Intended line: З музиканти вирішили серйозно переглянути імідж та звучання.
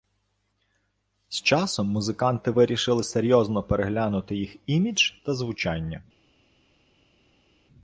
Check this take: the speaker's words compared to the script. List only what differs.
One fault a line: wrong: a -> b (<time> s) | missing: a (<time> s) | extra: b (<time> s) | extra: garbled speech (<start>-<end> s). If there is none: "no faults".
extra: часом (1.4 s)
extra: їх (4.3 s)